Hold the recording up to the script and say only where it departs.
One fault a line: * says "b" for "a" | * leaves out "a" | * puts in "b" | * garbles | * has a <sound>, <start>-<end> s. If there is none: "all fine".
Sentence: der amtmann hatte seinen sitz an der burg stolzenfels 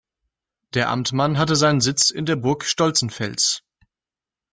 * says "in" for "an"